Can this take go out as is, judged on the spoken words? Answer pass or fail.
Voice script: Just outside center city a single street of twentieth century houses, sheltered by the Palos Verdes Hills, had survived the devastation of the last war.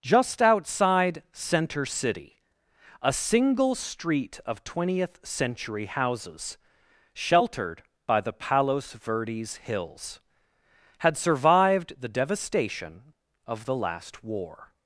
pass